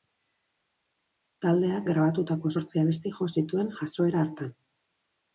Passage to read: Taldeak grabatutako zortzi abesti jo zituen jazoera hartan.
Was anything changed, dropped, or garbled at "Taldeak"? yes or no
no